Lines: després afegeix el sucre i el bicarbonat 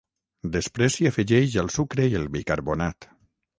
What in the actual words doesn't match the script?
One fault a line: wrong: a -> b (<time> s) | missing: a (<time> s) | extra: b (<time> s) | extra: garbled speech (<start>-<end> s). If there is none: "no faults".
extra: s'hi (0.9 s)